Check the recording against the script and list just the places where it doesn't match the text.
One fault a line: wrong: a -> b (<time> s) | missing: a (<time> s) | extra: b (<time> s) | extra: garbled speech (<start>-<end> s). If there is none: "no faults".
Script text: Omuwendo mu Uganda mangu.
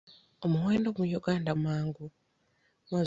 no faults